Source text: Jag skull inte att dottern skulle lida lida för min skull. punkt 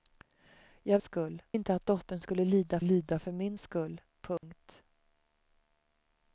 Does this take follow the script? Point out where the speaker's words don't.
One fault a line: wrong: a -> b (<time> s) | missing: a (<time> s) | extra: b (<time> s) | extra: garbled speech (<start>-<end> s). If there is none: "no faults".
no faults